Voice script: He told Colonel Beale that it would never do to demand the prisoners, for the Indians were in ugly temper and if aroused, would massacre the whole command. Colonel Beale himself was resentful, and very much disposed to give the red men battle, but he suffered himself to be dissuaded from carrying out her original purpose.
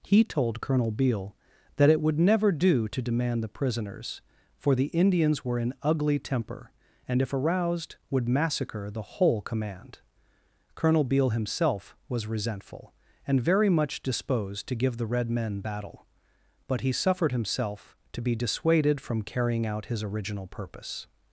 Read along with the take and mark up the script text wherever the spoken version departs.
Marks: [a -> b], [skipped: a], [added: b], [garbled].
He told Colonel Beale that it would never do to demand the prisoners, for the Indians were in ugly temper and if aroused, would massacre the whole command. Colonel Beale himself was resentful, and very much disposed to give the red men battle, but he suffered himself to be dissuaded from carrying out [her -> his] original purpose.